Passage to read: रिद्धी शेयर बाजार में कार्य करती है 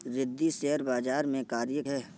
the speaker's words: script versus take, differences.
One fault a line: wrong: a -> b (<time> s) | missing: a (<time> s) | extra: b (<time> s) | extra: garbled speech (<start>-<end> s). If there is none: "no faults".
missing: करती (1.8 s)